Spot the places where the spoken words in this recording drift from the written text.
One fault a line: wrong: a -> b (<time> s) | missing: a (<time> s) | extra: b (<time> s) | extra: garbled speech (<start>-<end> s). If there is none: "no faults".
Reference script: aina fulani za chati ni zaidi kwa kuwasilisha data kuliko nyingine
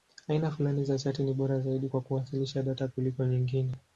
extra: bora (1.3 s)